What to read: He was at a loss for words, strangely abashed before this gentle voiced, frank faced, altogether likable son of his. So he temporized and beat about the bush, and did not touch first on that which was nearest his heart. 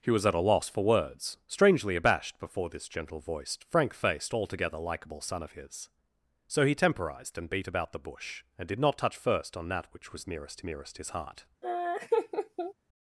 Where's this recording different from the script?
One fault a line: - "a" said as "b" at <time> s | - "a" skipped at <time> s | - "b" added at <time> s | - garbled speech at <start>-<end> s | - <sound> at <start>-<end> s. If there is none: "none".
- "nearest" added at 10.6 s
- laugh at 11.6-12.7 s